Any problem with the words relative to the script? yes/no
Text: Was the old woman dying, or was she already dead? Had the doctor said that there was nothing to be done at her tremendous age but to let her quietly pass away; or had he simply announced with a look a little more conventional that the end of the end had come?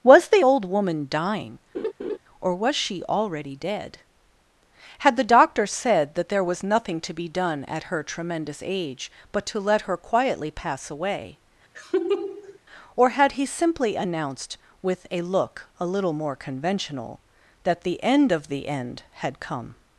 no